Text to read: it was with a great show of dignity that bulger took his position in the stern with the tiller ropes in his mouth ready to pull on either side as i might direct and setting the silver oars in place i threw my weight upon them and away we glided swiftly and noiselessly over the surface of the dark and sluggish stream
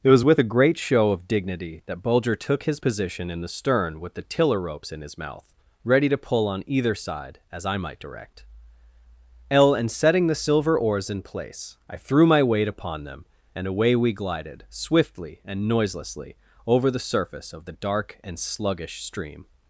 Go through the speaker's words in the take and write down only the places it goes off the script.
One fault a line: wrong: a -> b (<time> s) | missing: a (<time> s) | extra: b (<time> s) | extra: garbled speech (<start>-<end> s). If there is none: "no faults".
extra: l (9.5 s)